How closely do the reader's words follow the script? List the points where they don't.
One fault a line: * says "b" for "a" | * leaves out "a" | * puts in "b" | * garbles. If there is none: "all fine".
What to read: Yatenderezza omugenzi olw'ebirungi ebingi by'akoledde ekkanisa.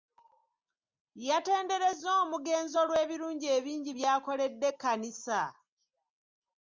all fine